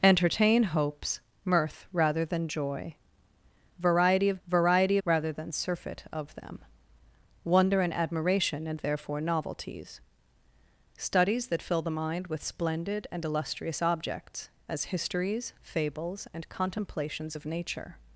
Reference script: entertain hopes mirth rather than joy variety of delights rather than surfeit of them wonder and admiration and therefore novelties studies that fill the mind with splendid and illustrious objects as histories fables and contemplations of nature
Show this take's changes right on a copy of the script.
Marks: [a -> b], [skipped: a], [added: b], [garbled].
entertain hopes mirth rather than joy variety of [delights -> variety] rather than surfeit of them wonder and admiration and therefore novelties studies that fill the mind with splendid and illustrious objects as histories fables and contemplations of nature